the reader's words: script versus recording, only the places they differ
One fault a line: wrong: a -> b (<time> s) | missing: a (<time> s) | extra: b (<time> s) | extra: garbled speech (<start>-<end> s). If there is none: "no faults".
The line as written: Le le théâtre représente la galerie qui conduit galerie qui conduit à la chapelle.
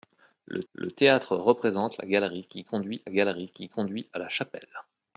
no faults